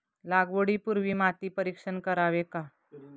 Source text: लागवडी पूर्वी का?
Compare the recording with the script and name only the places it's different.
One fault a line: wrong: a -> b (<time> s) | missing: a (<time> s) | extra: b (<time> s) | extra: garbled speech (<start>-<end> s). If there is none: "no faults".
extra: माती परीक्षण करावे (1.1 s)